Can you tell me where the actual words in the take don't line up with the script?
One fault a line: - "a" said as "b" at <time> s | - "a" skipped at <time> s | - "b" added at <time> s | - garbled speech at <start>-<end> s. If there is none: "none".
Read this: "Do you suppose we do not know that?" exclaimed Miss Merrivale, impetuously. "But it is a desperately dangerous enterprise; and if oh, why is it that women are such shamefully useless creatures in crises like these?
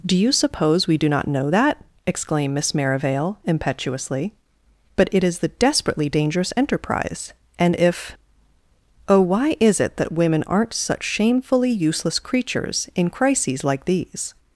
- "a" said as "the" at 5.4 s
- "are" said as "aren't" at 10.4 s